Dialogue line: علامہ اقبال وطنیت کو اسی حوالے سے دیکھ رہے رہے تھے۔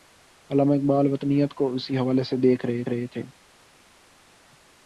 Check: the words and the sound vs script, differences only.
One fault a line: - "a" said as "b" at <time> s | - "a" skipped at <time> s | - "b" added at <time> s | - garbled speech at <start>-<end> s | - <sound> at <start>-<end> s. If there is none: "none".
none